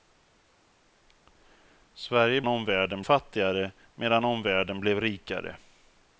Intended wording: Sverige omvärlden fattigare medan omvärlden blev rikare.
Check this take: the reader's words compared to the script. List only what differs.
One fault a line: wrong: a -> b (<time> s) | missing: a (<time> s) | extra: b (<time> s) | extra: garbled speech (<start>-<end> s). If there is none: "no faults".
no faults